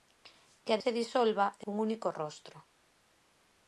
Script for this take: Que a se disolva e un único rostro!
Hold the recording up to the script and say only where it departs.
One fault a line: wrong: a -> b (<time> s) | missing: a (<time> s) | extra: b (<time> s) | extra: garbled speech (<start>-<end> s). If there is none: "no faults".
no faults